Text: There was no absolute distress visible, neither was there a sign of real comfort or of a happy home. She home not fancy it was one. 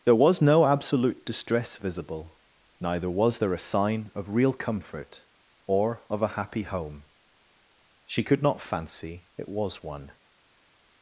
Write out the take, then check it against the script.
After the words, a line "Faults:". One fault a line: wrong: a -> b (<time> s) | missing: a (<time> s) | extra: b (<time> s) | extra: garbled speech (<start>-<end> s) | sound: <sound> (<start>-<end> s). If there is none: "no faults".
There was no absolute distress visible, neither was there a sign of real comfort or of a happy home. She could not fancy it was one.
Faults:
wrong: home -> could (8.2 s)